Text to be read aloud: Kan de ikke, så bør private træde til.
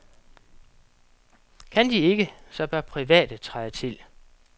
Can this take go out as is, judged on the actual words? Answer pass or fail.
pass